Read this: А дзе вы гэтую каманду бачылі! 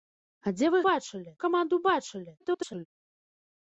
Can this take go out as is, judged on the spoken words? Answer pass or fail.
fail